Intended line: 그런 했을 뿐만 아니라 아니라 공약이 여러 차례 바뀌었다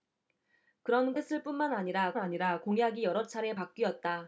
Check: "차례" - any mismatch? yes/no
no